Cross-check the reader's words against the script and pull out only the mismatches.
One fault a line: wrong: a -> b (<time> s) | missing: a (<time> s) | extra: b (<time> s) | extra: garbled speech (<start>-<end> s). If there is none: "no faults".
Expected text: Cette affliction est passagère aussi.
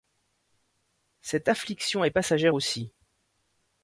no faults